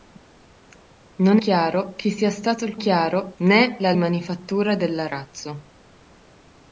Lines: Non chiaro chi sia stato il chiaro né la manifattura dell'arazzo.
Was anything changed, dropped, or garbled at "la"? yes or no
no